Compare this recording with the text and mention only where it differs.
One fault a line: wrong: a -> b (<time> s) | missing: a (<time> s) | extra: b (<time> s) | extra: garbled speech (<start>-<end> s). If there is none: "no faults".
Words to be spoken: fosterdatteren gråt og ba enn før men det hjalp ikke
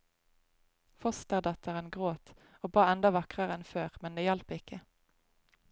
extra: enda vakrere (2.9 s)